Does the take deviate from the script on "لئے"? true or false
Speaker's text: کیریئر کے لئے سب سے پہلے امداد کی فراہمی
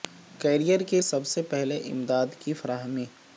true